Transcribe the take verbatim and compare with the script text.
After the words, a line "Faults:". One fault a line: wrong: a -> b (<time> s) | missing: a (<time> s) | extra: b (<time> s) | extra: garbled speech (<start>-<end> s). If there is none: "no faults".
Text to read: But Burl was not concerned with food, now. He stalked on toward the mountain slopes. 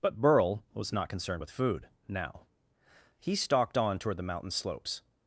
But Burl was not concerned with food, now. He stalked on toward the mountain slopes.
Faults:
no faults